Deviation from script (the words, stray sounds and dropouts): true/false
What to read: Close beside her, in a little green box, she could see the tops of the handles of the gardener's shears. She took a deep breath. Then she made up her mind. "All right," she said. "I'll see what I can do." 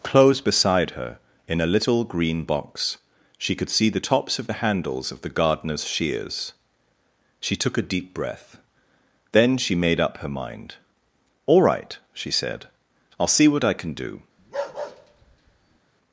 true